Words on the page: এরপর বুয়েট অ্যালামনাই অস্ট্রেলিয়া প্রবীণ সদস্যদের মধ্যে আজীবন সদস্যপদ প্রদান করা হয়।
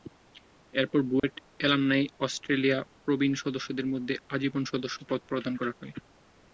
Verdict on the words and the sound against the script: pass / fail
fail